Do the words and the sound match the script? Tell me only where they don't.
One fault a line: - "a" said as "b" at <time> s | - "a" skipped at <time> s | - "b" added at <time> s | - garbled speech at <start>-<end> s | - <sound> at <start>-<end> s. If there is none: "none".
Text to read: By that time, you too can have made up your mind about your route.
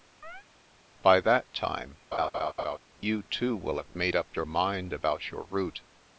- chirp at 0.2-0.5 s
- laugh at 2.1-2.8 s
- "can" said as "will" at 3.6 s